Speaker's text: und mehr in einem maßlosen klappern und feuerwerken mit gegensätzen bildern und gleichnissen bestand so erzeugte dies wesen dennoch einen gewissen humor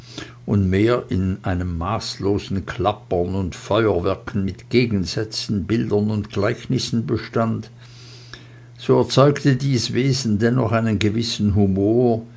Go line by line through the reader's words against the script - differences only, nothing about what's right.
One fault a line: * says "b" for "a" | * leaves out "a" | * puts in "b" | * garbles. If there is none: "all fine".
all fine